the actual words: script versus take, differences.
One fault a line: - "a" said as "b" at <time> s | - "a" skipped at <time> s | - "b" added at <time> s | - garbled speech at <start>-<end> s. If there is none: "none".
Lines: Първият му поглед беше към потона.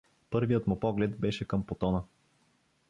none